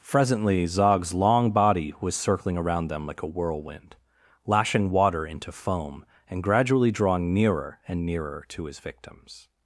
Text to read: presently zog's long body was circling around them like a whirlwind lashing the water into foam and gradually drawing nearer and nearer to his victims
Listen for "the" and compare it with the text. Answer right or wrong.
wrong